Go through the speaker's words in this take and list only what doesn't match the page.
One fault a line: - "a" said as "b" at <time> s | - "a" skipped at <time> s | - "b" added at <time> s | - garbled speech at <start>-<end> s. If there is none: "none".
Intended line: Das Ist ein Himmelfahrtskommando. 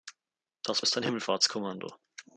none